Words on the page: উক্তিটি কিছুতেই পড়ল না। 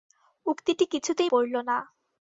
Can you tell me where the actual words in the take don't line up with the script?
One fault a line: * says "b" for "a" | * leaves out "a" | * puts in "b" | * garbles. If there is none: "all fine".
all fine